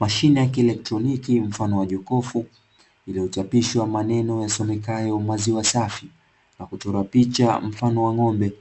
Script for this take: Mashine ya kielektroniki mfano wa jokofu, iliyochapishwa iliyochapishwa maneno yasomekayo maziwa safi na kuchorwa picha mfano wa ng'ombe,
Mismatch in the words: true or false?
true